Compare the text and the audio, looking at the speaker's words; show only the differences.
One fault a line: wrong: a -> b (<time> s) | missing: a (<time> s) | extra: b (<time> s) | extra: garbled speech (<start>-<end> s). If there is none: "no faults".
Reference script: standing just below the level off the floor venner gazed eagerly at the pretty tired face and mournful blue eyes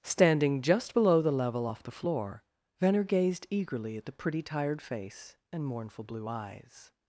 no faults